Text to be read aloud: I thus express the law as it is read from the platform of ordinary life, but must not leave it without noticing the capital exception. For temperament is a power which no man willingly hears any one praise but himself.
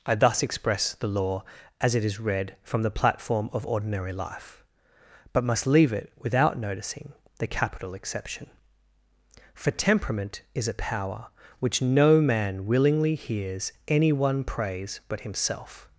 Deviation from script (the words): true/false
true